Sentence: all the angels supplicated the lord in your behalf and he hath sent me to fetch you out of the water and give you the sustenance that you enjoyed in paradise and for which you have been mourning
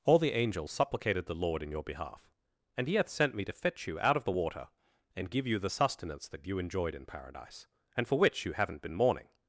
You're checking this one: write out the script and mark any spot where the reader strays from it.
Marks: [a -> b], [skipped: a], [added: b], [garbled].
all the angels supplicated the lord in your behalf and he hath sent me to fetch you out of the water and give you the sustenance that you enjoyed in paradise and for which you [have -> haven't] been mourning